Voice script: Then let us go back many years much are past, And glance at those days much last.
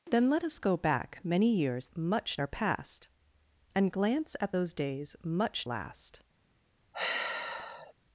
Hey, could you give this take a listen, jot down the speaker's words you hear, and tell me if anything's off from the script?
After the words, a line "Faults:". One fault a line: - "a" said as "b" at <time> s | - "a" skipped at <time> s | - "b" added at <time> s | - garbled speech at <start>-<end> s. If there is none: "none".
Then let us go back many years much are past, And glance at those days much last.
Faults:
none